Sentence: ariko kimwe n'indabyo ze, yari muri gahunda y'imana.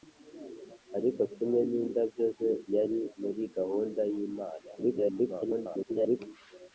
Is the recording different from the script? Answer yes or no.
yes